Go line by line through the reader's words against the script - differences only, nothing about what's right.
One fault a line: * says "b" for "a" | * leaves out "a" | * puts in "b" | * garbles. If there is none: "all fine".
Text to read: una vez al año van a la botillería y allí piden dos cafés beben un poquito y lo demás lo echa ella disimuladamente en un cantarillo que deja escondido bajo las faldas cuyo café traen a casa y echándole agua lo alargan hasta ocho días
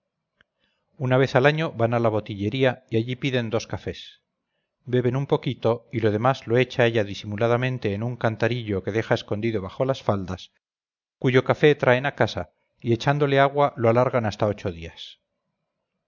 all fine